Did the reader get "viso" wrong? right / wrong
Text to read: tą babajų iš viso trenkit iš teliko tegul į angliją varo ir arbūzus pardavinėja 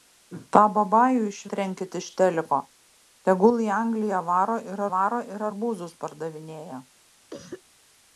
wrong